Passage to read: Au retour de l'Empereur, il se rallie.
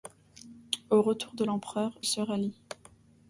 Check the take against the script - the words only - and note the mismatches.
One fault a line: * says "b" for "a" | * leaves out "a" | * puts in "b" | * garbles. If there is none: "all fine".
* leaves out "il"